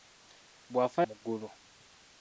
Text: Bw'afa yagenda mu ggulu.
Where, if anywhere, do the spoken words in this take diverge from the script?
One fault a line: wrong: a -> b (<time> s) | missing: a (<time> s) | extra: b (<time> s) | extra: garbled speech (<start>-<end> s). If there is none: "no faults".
missing: yagenda (1.0 s)